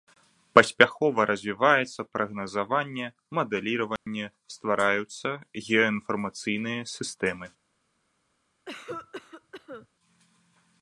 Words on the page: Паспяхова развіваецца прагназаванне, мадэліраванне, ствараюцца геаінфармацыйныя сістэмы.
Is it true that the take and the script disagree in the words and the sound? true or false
true